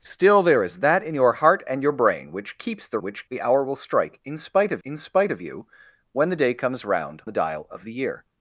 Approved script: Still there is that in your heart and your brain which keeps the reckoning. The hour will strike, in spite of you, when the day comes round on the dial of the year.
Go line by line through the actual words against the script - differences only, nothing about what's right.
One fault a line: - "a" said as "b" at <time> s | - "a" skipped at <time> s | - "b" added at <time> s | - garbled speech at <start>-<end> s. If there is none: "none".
- "reckoning" said as "which" at 3.0 s
- "in spite of" added at 4.8 s
- "on" skipped at 7.2 s